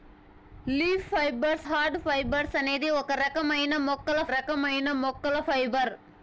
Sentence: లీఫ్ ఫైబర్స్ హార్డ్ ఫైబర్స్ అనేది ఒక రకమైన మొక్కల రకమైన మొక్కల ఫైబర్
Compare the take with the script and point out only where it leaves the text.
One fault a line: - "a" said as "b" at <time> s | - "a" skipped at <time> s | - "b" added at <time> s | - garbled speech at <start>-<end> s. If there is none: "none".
none